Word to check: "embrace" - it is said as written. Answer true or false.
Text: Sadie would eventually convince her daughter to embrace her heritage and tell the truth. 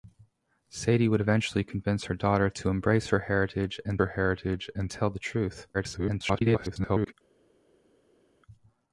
true